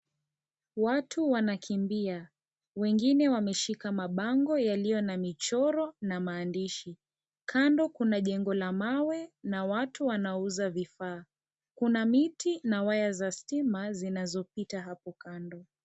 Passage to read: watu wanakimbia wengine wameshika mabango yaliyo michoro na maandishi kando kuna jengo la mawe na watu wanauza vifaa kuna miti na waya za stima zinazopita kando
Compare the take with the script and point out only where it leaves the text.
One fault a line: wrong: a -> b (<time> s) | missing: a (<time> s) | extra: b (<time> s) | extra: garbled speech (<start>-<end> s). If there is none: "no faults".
extra: na (5.0 s)
extra: hapo (14.8 s)